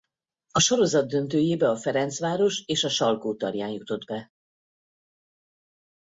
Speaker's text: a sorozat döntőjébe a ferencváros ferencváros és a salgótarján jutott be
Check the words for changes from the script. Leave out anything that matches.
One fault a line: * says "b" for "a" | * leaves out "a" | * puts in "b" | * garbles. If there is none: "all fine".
* leaves out "ferencváros"